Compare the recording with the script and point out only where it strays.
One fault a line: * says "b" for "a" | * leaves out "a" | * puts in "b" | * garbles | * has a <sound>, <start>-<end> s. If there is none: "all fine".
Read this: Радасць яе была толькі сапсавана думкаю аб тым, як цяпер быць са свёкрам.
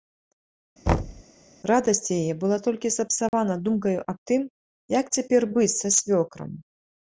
* has a thud, 0.9-1.2 s
* has a dropout, 3.3-3.3 s